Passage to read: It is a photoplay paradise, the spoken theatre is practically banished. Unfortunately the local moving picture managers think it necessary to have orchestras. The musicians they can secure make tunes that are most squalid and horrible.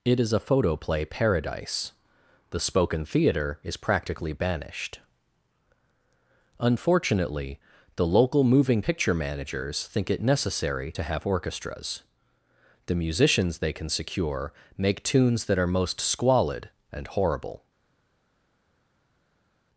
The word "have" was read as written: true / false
true